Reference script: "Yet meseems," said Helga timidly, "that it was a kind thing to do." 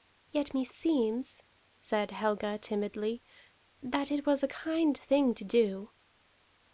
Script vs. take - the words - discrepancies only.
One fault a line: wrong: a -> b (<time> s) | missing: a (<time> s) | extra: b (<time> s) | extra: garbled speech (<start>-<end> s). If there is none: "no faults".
no faults